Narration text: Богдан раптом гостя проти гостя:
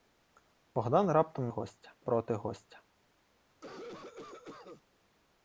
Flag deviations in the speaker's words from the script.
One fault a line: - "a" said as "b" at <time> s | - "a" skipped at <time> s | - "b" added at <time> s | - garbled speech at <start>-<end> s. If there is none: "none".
none